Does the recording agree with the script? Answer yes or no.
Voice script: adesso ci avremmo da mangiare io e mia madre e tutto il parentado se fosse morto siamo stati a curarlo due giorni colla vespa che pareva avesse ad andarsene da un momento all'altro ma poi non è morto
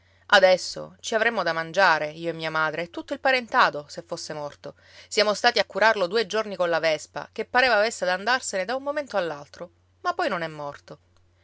yes